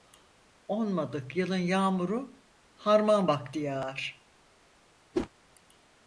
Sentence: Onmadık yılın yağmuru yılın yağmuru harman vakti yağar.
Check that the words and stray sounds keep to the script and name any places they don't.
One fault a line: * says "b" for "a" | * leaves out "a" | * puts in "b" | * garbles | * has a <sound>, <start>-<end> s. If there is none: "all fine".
* leaves out "yılın yağmuru"
* has a whoosh, 5.1-5.3 s